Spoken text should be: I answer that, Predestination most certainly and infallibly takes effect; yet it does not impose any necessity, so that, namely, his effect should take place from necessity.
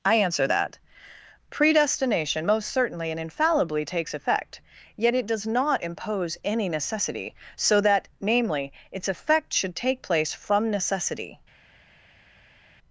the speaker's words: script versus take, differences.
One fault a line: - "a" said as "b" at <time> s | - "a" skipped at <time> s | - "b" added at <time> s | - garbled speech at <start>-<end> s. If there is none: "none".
- "his" said as "its" at 8.9 s